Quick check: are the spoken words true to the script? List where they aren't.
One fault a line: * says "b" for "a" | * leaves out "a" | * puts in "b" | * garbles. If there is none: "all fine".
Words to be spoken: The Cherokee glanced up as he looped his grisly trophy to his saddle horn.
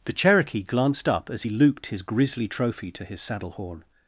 all fine